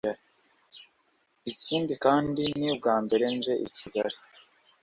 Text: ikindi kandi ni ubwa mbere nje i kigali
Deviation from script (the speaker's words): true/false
false